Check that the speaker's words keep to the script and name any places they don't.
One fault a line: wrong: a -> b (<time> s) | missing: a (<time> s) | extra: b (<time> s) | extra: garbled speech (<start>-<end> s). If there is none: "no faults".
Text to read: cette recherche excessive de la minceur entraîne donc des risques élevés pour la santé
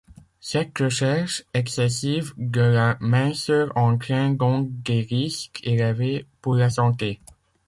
no faults